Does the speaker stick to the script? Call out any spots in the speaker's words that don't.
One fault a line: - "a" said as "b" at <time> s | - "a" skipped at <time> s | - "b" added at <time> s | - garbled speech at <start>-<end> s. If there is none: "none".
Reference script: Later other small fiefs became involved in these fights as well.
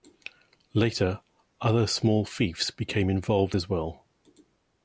- "in these fights" skipped at 3.5 s